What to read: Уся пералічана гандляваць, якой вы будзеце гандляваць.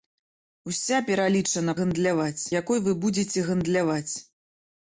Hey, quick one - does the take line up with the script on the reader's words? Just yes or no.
yes